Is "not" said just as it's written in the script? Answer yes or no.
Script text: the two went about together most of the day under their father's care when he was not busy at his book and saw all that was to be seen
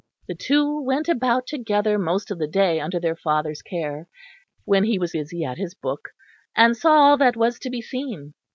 no